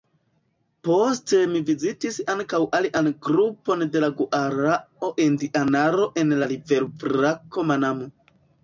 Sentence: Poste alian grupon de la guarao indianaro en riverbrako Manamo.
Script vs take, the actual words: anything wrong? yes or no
yes